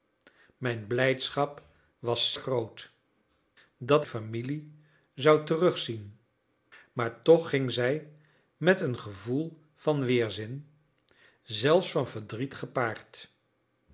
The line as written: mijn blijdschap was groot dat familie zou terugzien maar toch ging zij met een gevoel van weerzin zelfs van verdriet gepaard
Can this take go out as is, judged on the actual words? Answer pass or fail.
pass